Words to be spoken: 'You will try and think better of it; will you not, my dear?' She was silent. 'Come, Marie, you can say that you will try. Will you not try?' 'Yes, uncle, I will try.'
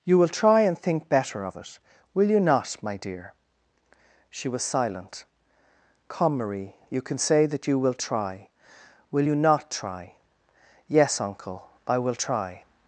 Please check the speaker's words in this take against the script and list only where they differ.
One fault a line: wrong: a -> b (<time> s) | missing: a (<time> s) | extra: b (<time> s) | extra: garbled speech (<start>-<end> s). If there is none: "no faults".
no faults